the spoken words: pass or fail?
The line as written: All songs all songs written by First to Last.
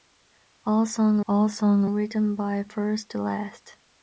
pass